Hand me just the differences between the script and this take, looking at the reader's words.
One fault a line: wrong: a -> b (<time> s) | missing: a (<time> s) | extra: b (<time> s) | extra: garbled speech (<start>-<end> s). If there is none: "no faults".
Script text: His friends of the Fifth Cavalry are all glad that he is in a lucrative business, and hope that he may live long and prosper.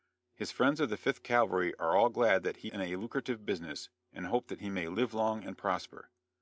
missing: is (2.7 s)